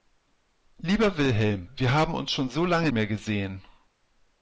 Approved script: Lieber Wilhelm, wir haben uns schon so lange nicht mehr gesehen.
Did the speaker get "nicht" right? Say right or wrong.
wrong